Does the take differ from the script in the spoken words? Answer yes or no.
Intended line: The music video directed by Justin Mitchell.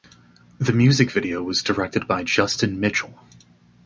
yes